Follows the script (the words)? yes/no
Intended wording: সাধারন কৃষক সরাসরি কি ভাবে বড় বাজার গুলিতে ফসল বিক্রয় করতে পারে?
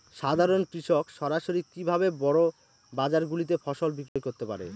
yes